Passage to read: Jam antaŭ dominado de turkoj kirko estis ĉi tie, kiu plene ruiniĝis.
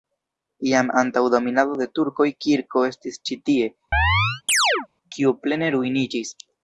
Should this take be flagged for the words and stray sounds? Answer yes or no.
yes